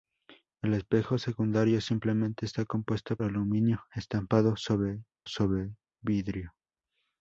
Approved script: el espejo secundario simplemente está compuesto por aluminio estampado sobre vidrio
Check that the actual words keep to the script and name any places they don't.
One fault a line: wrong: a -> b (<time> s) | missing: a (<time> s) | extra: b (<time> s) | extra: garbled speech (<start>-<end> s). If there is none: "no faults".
missing: por (3.2 s)
extra: sobre (5.2 s)